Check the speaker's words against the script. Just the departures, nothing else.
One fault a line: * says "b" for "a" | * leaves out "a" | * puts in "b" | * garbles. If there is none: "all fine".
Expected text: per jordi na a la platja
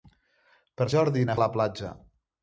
all fine